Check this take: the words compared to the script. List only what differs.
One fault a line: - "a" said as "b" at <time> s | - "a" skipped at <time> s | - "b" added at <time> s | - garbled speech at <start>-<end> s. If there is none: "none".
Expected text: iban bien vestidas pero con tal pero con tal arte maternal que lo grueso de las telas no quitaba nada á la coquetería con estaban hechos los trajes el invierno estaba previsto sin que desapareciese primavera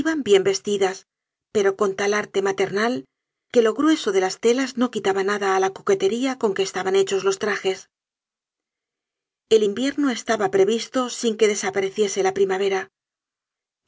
- "pero con tal" skipped at 2.1 s
- "que" added at 6.5 s
- "la" added at 12.3 s